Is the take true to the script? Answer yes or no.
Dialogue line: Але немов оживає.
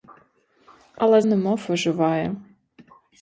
yes